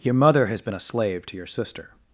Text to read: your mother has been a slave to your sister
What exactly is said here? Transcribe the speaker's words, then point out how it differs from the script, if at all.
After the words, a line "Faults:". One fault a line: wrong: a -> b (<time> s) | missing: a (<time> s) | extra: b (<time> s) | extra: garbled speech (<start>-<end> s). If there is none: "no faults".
your mother has been a slave to your sister
Faults:
no faults